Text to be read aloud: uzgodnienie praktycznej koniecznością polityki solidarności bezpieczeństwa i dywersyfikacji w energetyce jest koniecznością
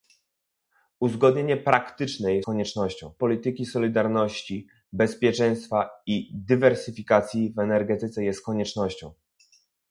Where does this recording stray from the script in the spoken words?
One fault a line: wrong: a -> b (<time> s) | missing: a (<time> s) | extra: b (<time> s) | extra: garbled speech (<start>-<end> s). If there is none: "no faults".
no faults